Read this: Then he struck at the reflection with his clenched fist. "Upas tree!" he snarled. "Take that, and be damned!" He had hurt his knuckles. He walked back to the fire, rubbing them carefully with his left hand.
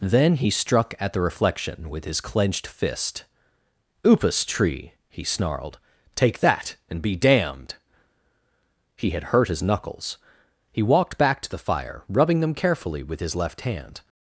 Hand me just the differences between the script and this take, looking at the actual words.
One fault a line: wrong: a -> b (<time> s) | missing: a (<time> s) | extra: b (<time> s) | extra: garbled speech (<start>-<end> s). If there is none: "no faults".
no faults